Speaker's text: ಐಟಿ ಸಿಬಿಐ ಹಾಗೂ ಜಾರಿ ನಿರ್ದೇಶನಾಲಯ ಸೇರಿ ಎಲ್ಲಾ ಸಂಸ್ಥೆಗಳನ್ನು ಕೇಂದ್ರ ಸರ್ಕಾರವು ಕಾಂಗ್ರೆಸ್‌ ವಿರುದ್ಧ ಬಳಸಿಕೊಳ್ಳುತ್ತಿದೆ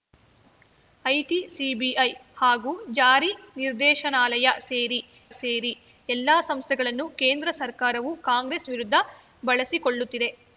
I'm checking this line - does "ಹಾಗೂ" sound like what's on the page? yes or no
yes